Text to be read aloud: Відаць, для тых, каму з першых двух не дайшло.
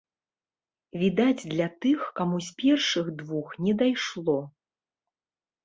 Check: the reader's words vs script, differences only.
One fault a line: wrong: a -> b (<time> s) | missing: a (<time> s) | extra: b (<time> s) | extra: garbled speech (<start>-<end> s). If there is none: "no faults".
no faults